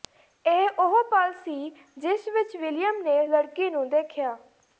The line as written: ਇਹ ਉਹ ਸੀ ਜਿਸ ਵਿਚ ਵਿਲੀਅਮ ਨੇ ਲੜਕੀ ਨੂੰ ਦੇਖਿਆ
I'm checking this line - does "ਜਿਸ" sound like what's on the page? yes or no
yes